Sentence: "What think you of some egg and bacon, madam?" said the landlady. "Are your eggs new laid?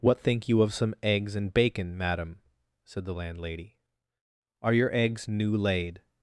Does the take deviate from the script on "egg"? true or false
true